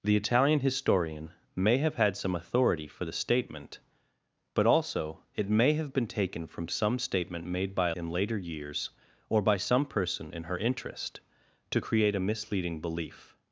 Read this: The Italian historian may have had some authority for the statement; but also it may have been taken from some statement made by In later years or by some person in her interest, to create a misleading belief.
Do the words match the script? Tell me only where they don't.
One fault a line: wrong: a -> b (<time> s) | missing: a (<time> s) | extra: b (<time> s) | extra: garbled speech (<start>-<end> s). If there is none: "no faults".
no faults